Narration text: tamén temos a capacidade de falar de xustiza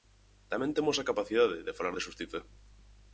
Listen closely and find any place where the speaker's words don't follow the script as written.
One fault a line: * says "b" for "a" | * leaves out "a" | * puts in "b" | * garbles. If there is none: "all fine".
all fine